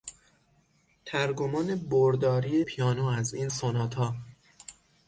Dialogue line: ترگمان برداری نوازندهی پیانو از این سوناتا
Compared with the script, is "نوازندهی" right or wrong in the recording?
wrong